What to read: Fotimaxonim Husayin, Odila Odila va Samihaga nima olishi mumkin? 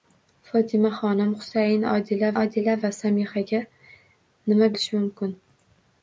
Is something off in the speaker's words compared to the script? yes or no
no